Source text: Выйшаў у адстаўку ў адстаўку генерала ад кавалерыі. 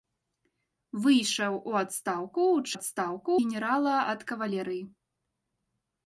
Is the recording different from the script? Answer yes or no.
no